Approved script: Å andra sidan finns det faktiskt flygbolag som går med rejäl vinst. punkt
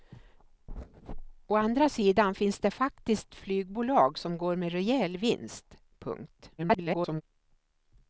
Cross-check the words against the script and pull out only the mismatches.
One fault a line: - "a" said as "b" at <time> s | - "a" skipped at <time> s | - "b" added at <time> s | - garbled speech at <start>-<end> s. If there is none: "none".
- garbled speech at 6.6-7.2 s